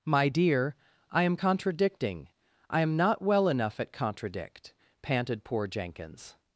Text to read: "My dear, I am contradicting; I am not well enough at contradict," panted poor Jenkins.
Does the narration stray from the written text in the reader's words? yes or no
no